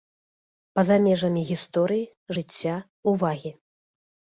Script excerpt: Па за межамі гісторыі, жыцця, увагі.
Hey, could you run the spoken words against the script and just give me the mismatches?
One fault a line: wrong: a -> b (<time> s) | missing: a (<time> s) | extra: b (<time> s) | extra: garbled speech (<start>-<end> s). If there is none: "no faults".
no faults